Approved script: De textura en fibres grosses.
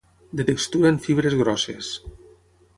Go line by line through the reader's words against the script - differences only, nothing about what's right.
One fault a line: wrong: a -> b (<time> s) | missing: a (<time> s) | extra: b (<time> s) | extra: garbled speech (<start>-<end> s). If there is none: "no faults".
no faults